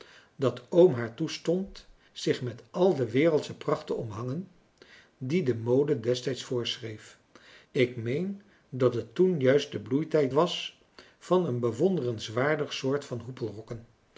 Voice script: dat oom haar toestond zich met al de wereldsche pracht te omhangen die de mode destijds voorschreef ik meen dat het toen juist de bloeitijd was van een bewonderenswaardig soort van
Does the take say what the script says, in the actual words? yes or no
yes